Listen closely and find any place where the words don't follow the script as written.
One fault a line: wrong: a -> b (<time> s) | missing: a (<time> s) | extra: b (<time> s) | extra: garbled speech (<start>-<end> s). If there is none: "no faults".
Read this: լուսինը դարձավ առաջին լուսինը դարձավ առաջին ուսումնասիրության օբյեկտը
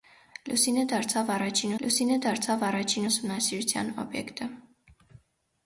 no faults